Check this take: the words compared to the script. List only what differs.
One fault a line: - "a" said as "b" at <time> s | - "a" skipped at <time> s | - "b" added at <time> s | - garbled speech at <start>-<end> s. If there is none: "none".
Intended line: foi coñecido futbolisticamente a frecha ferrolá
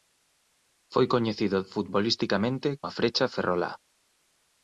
none